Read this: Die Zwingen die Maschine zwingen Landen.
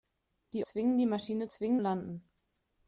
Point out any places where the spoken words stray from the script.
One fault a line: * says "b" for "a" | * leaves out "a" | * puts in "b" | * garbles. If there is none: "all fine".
all fine